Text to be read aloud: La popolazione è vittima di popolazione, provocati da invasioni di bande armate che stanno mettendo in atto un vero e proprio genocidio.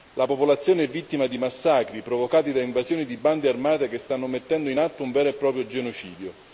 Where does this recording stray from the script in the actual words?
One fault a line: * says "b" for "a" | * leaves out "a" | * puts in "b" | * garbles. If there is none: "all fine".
* says "massacri" for "popolazione"